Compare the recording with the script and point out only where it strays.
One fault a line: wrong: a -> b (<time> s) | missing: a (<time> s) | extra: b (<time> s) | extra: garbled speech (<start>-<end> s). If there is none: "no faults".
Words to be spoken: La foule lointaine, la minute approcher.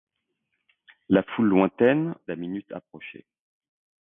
no faults